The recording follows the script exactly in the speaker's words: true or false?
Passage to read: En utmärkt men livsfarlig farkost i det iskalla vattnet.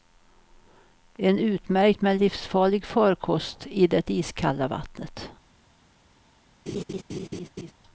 true